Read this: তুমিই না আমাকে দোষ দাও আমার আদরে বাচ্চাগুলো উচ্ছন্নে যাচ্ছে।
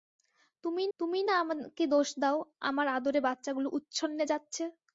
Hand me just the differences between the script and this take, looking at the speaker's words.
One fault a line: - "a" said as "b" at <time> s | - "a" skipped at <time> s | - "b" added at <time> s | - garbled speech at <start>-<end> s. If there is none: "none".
- "তুমিই" added at 1.0 s